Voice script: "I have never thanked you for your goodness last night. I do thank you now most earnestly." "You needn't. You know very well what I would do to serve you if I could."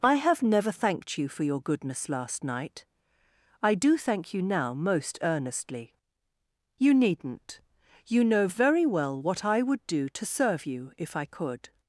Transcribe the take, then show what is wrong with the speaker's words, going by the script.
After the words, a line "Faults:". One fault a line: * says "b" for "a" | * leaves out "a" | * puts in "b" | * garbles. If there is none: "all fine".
"I have never thanked you for your goodness last night. I do thank you now most earnestly." "You needn't. You know very well what I would do to serve you if I could."
Faults:
all fine